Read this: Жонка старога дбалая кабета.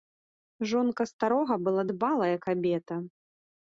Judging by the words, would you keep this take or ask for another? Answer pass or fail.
fail